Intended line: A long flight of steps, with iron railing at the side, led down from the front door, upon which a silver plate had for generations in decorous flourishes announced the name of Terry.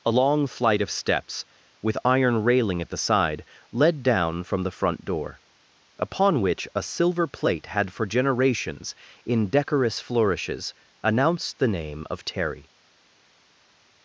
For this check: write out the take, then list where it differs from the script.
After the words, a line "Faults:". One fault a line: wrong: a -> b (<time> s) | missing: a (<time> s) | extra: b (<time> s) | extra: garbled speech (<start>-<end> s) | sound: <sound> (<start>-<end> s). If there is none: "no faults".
A long flight of steps, with iron railing at the side, led down from the front door, upon which a silver plate had for generations in decorous flourishes announced the name of Terry.
Faults:
no faults